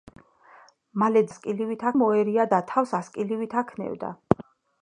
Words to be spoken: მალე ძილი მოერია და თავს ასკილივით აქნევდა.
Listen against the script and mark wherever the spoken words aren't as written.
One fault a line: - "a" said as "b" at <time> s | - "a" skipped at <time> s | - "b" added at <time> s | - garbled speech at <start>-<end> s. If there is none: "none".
- "ძილი" said as "ასკილივით" at 1.3 s